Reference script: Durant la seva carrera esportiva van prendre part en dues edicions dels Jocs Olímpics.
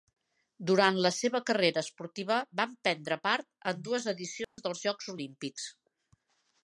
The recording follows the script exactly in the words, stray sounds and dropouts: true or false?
false